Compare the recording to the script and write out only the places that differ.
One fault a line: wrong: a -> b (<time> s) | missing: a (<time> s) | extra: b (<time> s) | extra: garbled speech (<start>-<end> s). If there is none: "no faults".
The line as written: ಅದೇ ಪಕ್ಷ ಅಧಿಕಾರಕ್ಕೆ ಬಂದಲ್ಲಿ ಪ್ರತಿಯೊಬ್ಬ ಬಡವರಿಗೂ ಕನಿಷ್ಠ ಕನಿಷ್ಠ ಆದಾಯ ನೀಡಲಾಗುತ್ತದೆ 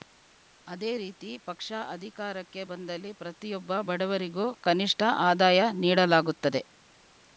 extra: ರೀತಿ (0.9 s)
missing: ಕನಿಷ್ಠ (5.0 s)